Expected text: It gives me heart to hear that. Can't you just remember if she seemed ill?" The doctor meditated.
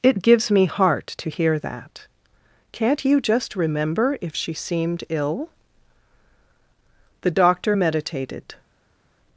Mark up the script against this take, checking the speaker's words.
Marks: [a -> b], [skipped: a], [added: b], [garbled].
It gives me heart to hear that. Can't you just remember if she seemed ill?" The doctor meditated.